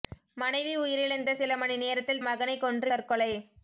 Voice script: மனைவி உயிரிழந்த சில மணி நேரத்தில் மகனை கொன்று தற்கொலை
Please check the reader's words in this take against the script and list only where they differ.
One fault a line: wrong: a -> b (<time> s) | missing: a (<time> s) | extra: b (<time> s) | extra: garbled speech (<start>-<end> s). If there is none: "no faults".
no faults